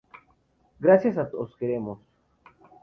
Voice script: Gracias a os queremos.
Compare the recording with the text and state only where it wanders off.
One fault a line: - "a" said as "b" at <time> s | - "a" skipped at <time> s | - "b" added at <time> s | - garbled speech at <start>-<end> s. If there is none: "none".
none